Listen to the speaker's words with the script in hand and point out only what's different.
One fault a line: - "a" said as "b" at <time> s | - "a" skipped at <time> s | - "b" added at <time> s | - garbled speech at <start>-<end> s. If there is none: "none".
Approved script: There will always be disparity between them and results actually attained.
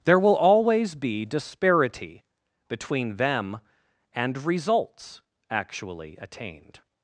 none